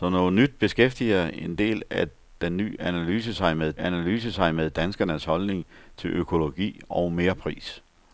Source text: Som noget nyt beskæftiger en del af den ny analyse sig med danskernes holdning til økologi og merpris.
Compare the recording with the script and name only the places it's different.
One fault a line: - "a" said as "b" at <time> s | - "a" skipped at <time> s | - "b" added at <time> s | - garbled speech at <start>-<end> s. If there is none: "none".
- "analyse sig med" added at 3.8 s